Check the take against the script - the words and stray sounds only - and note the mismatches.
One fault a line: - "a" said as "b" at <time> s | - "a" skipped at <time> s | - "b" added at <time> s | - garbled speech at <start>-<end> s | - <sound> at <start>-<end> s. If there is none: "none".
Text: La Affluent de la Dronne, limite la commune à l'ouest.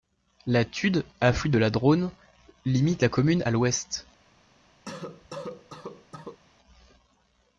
- "Tude" added at 0.7 s
- cough at 4.9-6.4 s